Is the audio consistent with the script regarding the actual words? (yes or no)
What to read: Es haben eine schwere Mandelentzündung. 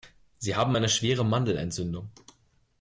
no